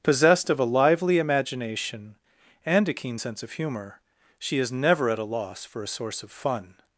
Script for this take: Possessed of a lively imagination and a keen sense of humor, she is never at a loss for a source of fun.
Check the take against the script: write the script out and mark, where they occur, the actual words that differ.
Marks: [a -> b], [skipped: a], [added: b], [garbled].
Possessed of a lively imagination and a keen sense of humor, she is never at a loss for a source of fun.